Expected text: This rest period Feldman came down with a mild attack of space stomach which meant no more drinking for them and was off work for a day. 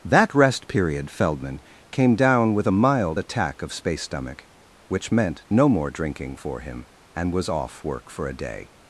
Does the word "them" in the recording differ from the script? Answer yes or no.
yes